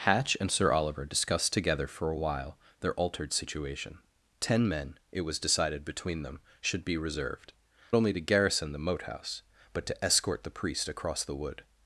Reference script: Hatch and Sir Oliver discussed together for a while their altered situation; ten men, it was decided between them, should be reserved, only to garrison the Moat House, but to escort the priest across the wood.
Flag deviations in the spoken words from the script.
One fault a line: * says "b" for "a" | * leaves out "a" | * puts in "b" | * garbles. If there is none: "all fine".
all fine